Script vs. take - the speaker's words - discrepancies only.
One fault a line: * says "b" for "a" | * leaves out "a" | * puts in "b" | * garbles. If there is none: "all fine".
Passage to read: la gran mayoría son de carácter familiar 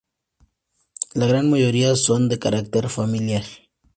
all fine